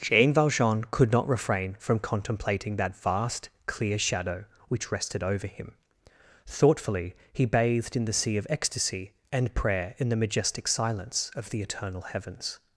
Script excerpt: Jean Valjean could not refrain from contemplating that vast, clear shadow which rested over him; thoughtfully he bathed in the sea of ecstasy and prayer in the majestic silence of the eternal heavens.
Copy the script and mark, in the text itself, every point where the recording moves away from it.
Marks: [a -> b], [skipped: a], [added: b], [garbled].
Jean Valjean could not refrain from contemplating that vast, clear shadow which rested over him; thoughtfully he bathed in the sea of ecstasy and prayer in the majestic silence of the eternal heavens.